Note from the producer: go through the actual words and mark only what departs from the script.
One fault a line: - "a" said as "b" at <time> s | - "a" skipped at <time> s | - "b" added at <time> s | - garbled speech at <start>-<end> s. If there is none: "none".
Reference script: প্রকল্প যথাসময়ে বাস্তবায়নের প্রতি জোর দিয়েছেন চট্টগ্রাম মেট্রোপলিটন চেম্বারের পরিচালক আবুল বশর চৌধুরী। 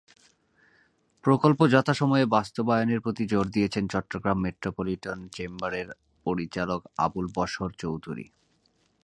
none